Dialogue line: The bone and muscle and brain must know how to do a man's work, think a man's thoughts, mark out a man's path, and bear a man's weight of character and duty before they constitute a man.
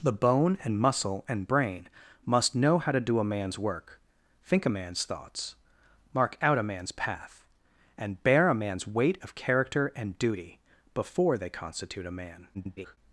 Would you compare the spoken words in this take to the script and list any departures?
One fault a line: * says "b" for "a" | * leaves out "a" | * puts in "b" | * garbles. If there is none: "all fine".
* garbles